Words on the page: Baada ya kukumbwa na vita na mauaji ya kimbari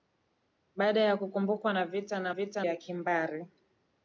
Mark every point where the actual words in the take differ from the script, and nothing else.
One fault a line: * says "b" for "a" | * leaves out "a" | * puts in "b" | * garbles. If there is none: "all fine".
* says "vita" for "mauaji"